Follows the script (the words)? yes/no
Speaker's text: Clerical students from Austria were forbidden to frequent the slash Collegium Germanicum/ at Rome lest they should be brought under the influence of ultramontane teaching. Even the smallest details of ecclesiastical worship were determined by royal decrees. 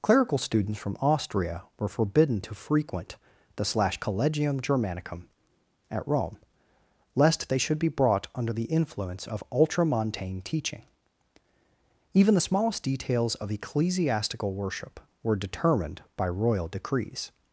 yes